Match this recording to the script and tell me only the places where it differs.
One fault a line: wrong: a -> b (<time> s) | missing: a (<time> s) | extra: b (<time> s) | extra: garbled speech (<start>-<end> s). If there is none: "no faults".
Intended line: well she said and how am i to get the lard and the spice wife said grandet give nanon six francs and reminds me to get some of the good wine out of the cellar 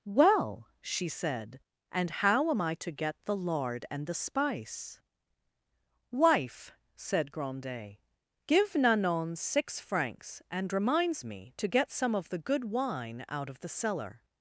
no faults